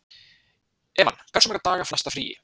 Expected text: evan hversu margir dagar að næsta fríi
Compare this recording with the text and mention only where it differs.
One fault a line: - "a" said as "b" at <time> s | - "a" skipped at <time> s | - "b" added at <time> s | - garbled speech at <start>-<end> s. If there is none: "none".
none